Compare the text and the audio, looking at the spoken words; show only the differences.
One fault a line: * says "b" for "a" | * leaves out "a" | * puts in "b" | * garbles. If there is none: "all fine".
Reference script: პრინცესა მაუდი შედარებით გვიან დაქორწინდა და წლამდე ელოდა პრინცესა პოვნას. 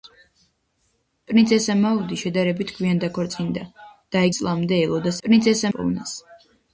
all fine